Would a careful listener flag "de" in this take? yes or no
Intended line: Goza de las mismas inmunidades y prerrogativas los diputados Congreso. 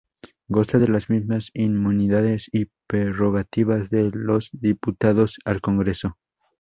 no